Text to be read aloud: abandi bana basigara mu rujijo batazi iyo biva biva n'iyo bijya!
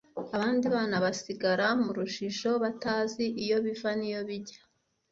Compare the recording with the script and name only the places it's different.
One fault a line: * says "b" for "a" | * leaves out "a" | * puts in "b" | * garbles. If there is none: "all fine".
* leaves out "biva"